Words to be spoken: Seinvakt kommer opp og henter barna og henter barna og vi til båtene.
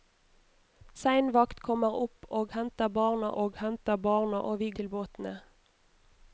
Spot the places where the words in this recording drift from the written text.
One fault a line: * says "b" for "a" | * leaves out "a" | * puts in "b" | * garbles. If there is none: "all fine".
all fine